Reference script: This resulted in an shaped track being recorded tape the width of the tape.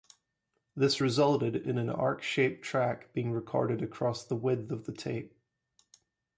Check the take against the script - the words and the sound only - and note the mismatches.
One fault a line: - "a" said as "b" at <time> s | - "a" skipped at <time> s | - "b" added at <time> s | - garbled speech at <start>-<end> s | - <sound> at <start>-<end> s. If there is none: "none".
- "arc" added at 1.9 s
- "tape" said as "across" at 3.8 s